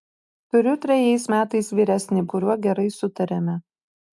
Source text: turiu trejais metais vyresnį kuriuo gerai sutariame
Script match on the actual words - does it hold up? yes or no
yes